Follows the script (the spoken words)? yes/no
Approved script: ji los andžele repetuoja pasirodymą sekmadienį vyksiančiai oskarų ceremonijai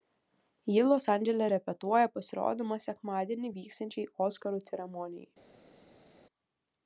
yes